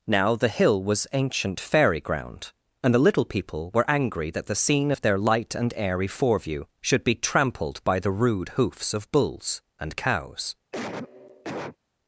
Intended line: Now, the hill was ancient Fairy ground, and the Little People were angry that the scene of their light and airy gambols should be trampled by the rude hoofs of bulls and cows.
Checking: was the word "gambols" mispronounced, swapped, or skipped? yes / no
yes